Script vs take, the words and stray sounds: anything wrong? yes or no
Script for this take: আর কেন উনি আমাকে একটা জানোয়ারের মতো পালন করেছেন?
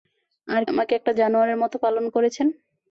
yes